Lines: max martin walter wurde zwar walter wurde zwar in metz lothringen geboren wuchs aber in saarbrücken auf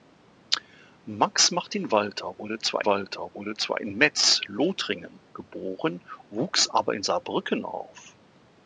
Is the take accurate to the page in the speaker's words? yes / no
yes